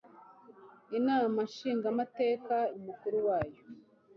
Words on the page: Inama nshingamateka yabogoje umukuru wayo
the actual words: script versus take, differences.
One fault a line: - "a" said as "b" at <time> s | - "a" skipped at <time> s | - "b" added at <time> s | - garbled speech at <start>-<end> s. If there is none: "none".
- "yabogoje" skipped at 2.5 s